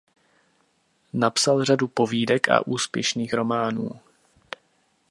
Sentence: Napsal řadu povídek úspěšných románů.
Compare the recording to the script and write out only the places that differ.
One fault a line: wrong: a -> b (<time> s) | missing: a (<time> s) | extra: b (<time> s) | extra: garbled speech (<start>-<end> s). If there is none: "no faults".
extra: a (2.5 s)